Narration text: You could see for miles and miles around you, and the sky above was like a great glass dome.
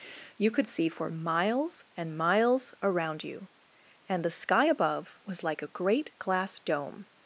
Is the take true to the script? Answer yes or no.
yes